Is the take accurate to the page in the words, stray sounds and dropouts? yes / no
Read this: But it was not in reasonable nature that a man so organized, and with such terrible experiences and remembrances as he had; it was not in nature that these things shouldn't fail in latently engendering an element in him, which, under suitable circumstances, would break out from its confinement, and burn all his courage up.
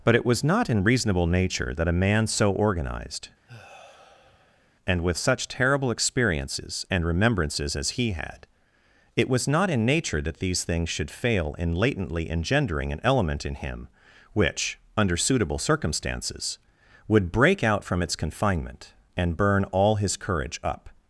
no